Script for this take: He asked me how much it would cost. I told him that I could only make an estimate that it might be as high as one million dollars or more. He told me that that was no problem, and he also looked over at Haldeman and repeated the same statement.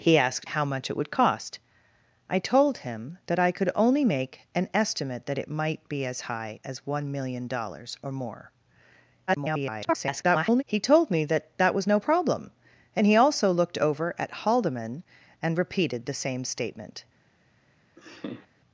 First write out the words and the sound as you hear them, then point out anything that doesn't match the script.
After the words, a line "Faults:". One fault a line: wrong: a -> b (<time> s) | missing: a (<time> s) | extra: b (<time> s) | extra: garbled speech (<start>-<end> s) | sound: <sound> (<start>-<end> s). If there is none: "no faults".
He asked how much it would cost. I told him that I could only make an estimate that it might be as high as one million dollars or more. [garbled] He told me that that was no problem, and he also looked over at Haldeman and repeated the same statement.
Faults:
missing: me (0.5 s)
extra: garbled speech (9.3-10.6 s)
sound: laugh (18.0-18.5 s)